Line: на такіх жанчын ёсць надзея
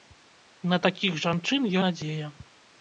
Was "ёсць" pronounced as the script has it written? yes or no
no